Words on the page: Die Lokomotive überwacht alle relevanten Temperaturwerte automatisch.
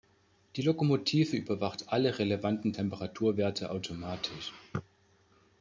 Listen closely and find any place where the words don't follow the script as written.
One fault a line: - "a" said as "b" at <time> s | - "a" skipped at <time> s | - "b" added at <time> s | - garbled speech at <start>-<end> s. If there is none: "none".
none